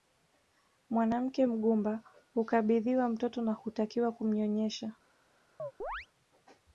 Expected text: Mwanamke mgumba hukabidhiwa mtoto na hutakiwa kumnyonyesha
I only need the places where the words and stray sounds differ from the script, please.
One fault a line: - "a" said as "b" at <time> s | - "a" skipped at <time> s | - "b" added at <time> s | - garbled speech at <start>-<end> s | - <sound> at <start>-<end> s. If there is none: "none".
- chirp at 5.6-6.1 s